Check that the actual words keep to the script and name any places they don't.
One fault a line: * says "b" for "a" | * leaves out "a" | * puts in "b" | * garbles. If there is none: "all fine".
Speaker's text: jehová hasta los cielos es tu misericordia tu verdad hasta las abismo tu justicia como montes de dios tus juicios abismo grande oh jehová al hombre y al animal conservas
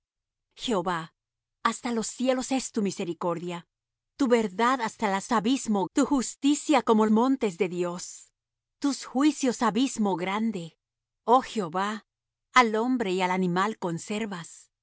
all fine